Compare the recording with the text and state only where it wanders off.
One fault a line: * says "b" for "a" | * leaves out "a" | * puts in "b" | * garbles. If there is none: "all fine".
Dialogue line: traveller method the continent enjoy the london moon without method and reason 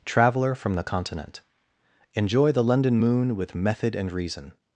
* says "from" for "method"
* says "with" for "without"